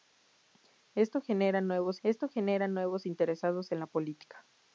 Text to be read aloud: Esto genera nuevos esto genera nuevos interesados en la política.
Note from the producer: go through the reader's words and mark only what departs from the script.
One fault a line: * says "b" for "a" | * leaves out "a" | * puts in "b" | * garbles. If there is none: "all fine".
all fine